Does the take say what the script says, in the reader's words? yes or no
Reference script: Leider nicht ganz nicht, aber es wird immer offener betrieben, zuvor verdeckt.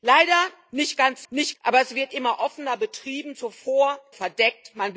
yes